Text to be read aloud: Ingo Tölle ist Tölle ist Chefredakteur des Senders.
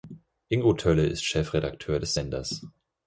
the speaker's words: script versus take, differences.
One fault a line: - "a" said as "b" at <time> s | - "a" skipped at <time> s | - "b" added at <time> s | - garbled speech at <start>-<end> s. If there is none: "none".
- "Tölle ist" skipped at 1.3 s